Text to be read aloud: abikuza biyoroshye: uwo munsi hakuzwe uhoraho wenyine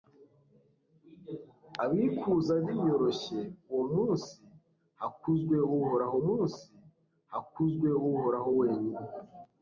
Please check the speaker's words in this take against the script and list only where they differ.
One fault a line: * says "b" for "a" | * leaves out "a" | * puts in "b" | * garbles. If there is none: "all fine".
* puts in "munsi hakuzwe uhoraho"